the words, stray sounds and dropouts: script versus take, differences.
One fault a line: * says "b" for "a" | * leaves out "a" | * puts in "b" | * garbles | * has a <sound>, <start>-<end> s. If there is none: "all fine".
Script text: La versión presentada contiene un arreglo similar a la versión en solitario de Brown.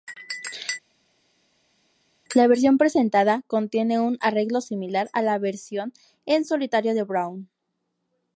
all fine